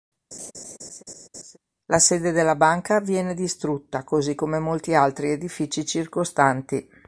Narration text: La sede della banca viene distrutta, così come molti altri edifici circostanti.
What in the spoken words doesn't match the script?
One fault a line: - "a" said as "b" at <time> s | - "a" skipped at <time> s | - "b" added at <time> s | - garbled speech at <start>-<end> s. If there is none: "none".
none